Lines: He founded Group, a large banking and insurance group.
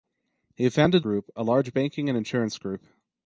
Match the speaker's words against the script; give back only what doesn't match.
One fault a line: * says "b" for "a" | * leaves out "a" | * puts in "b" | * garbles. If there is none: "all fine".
all fine